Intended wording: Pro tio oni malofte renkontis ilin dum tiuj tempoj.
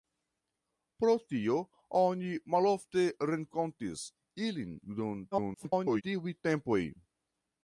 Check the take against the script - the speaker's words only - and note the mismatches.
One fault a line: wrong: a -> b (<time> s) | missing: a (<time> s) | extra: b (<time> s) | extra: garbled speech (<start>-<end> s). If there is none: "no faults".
extra: garbled speech (5.3-6.0 s)